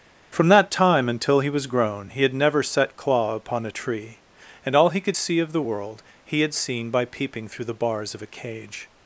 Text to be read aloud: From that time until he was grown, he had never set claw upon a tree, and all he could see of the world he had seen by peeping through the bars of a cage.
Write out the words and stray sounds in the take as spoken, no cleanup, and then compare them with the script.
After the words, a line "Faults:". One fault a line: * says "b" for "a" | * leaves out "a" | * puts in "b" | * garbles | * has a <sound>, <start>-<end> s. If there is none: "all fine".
From that time until he was grown, he had never set claw upon a tree, and all he could see of the world he had seen by peeping through the bars of a cage.
Faults:
all fine